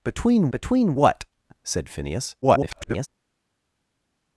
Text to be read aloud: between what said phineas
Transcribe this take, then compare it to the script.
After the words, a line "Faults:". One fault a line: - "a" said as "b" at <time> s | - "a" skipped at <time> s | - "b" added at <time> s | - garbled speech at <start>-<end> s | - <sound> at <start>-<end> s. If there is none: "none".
between between what said phineas [garbled]
Faults:
- "between" added at 0.5 s
- garbled speech at 2.4-3.1 s